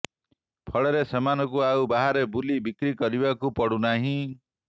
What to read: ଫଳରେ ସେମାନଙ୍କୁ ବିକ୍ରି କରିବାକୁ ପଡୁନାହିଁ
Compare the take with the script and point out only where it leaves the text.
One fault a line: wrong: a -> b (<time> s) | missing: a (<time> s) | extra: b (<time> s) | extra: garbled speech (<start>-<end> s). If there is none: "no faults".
extra: ଆଉ ବାହାରେ ବୁଲି (1.6 s)